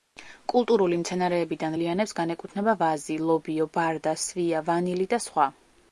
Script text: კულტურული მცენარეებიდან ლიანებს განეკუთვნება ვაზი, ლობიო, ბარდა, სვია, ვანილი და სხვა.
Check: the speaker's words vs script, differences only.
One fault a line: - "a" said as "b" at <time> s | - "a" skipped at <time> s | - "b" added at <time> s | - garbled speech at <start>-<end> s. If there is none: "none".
none